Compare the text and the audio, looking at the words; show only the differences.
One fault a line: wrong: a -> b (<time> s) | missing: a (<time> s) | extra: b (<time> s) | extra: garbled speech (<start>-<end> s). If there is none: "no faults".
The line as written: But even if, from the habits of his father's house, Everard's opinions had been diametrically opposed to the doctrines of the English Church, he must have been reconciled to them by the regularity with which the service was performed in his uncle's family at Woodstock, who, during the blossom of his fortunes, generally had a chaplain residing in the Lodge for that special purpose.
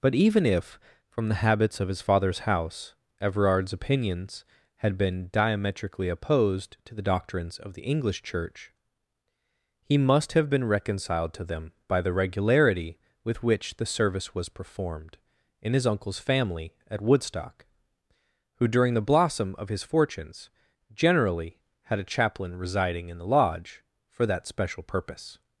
no faults